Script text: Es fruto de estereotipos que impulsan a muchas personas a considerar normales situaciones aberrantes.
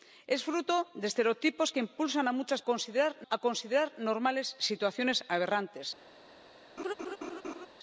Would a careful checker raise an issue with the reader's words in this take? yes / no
yes